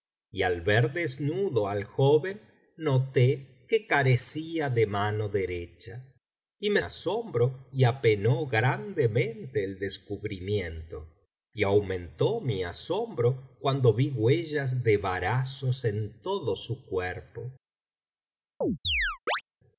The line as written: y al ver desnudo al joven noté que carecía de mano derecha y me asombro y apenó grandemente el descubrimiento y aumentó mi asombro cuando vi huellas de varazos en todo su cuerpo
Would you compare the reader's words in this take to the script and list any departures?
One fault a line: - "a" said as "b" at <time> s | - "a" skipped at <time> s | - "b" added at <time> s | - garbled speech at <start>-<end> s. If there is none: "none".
none